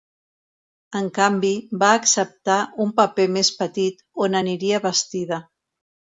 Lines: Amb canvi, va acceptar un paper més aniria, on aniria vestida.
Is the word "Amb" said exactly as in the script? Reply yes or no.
no